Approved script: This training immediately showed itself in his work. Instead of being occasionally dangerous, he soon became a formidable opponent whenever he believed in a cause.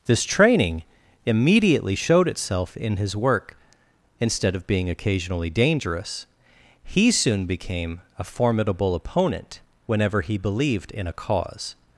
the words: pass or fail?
pass